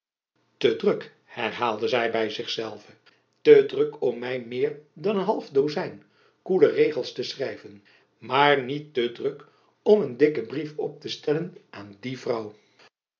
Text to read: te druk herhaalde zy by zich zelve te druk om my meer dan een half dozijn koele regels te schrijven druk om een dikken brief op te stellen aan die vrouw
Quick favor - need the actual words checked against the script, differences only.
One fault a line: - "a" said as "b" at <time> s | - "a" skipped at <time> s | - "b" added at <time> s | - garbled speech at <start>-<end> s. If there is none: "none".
- "maar niet te" added at 8.2 s